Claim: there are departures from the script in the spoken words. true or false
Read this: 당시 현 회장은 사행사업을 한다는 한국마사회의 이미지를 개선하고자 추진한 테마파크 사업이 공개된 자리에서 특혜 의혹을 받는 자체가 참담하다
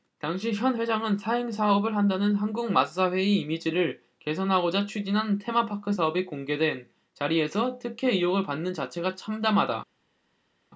false